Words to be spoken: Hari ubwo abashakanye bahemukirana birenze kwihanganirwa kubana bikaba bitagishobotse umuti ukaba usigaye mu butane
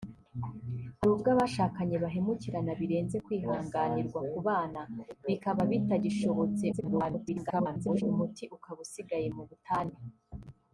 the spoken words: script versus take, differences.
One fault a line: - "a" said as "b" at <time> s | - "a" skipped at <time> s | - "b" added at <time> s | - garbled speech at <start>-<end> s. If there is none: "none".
- garbled speech at 6.7-8.0 s